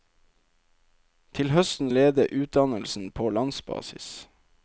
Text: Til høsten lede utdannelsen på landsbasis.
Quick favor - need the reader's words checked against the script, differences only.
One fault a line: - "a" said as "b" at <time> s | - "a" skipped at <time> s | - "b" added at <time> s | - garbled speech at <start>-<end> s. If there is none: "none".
none